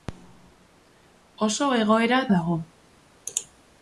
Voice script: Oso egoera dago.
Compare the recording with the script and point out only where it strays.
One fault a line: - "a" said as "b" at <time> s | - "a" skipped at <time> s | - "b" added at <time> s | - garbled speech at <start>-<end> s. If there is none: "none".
none